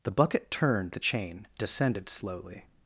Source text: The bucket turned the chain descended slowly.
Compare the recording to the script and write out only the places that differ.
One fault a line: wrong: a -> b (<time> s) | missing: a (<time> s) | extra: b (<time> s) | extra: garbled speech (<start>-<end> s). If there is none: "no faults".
no faults